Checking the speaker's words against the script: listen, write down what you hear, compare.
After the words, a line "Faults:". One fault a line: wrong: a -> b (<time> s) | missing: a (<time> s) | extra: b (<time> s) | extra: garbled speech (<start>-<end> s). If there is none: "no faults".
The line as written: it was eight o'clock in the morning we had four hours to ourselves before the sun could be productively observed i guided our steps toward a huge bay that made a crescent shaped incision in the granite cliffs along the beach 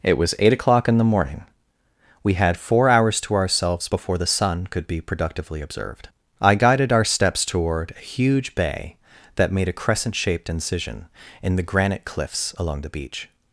it was eight o'clock in the morning we had four hours to ourselves before the sun could be productively observed i guided our steps toward a huge bay that made a crescent shaped incision in the granite cliffs along the beach
Faults:
no faults